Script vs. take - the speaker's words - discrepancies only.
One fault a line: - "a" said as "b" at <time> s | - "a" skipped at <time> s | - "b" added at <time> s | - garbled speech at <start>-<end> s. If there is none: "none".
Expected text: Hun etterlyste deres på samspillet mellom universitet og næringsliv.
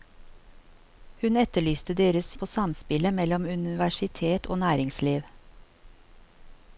none